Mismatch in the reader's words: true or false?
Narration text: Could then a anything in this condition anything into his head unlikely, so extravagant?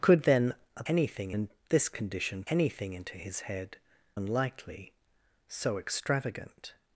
false